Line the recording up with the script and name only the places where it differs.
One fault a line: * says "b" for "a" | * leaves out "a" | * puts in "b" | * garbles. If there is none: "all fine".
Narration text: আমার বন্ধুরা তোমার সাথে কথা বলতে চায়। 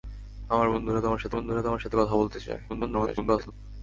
* puts in "বন্ধুরা তোমার সাথে"
* garbles